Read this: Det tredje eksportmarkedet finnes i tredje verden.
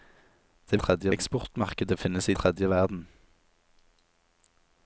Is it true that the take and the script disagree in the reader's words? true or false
false